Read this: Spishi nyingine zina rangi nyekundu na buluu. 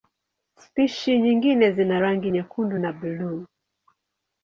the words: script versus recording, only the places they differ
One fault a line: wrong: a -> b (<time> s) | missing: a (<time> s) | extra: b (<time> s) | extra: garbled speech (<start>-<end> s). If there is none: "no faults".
no faults